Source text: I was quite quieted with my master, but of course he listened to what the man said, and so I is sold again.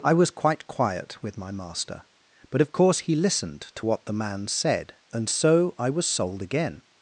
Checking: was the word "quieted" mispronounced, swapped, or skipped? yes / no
yes